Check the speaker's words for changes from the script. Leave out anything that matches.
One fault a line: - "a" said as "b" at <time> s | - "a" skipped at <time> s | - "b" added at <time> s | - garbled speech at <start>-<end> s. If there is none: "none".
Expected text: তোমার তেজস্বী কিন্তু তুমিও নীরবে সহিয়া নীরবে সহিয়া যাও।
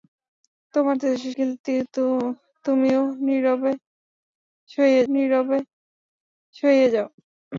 none